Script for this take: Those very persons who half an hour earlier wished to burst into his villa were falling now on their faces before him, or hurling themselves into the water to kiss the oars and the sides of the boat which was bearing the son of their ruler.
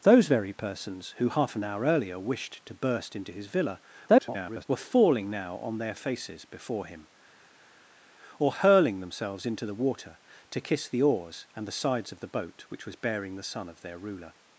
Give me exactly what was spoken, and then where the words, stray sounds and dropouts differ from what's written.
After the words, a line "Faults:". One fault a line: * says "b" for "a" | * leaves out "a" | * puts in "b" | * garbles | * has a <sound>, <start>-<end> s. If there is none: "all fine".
Those very persons who half an hour earlier wished to burst into his villa [garbled] were falling now on their faces before him, or hurling themselves into the water to kiss the oars and the sides of the boat which was bearing the son of their ruler.
Faults:
* garbles